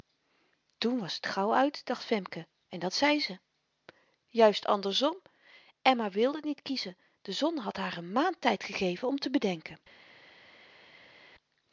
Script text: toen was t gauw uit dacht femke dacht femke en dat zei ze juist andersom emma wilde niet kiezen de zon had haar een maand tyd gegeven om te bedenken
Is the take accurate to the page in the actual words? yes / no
no